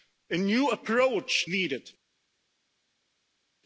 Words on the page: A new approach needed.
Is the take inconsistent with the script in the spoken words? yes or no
no